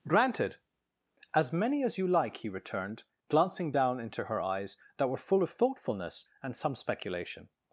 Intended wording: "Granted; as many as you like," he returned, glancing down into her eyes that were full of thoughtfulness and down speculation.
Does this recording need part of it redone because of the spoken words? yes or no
yes